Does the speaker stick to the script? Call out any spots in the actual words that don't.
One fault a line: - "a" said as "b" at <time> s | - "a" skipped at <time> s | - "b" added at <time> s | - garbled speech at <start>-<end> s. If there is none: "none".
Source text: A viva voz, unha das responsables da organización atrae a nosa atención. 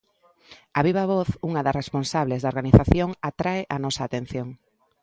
none